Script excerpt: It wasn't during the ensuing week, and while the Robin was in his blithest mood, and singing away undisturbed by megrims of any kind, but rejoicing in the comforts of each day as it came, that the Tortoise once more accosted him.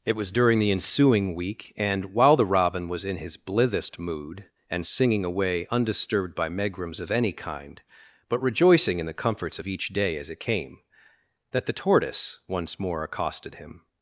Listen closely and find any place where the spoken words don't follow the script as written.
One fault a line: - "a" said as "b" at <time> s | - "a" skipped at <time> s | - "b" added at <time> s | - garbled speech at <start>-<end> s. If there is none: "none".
- "wasn't" said as "was" at 0.1 s